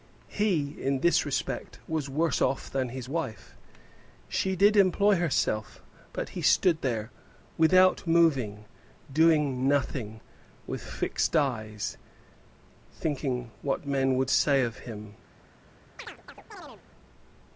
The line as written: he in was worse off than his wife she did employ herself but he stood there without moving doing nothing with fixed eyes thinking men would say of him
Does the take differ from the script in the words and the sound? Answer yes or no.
yes